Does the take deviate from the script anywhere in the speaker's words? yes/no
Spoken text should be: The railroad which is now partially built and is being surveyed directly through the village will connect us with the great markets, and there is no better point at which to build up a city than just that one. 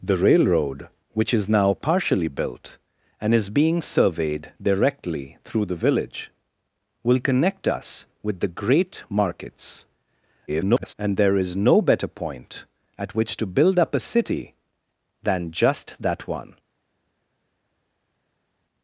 yes